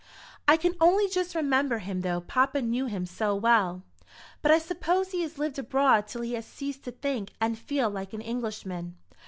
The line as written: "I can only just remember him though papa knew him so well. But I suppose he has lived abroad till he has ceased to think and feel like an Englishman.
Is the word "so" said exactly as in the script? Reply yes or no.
yes